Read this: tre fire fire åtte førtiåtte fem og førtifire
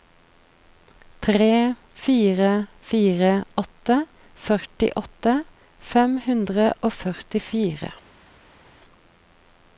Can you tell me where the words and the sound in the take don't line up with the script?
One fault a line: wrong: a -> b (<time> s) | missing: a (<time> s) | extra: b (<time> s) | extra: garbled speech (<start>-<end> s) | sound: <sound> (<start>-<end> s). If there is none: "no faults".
extra: hundre (6.3 s)